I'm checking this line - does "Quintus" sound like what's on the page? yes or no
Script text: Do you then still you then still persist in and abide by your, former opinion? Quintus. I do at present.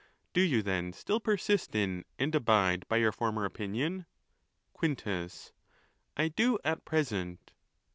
yes